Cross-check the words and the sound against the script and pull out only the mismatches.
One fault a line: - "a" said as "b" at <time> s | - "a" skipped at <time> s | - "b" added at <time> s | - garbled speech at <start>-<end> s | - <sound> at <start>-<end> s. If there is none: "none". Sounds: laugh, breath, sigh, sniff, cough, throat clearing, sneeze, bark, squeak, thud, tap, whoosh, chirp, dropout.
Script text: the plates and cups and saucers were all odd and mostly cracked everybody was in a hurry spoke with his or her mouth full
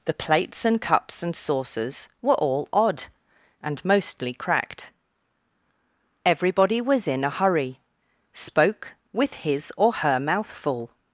none